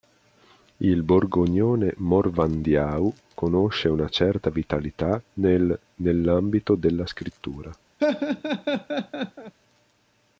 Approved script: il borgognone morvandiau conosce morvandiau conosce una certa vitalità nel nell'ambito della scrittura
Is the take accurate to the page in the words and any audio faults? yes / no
no